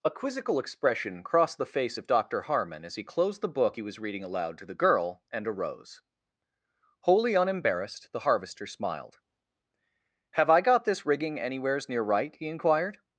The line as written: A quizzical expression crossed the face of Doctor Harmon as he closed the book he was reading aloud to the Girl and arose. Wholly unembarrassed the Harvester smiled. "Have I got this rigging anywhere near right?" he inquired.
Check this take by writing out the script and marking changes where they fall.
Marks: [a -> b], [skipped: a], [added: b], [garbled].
A quizzical expression crossed the face of Doctor Harmon as he closed the book he was reading aloud to the Girl and arose. Wholly unembarrassed the Harvester smiled. "Have I got this rigging [anywhere -> anywheres] near right?" he inquired.